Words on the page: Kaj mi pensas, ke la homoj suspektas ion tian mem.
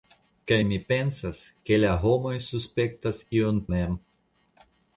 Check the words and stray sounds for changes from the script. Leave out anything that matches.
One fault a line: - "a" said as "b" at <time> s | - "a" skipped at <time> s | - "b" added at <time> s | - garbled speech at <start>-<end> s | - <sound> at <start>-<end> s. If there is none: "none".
- "tian" skipped at 3.6 s